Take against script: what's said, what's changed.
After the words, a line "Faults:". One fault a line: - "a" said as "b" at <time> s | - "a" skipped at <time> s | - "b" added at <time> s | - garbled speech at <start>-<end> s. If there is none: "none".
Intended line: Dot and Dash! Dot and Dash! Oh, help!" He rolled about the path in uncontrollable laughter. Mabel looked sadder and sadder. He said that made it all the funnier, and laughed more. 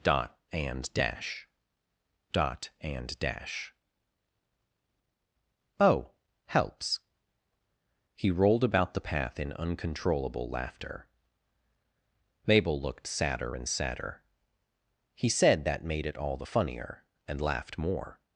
Dot and Dash! Dot and Dash! Oh, helps!" He rolled about the path in uncontrollable laughter. Mabel looked sadder and sadder. He said that made it all the funnier, and laughed more.
Faults:
- "help" said as "helps" at 6.5 s